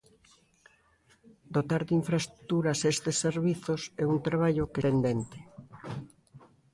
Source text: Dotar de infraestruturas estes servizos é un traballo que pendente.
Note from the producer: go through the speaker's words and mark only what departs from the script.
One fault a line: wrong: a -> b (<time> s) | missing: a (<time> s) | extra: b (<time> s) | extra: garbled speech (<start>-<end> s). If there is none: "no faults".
no faults